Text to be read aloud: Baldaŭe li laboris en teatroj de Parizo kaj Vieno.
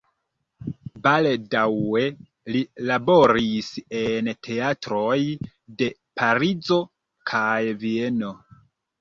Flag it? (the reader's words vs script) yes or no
no